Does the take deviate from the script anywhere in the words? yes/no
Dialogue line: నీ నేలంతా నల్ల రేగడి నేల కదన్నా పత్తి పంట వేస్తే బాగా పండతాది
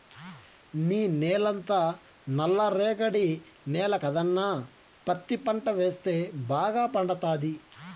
no